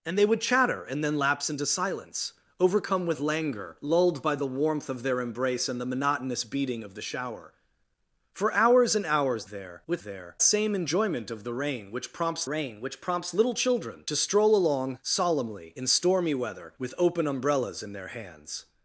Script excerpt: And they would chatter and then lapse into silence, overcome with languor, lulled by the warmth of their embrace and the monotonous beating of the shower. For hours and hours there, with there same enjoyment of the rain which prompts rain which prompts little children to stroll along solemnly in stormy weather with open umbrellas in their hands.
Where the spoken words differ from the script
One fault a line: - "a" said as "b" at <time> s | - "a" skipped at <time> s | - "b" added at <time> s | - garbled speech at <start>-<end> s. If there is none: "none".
none